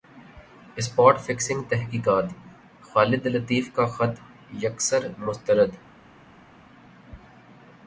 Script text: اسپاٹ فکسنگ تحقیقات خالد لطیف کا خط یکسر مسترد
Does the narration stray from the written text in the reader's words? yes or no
no